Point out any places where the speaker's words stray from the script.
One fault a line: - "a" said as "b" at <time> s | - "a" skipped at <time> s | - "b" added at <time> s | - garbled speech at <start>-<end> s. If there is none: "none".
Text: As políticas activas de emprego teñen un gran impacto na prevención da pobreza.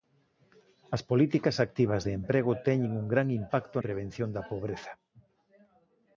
- "na" skipped at 3.8 s